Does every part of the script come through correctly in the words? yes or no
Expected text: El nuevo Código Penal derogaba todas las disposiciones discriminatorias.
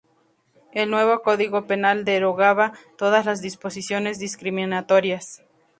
yes